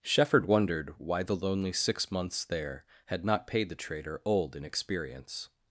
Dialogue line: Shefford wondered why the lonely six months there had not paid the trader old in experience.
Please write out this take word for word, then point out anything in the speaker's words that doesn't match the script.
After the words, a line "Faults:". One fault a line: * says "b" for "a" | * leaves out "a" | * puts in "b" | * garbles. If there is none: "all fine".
Shefford wondered why the lonely six months there had not paid the trader old in experience.
Faults:
all fine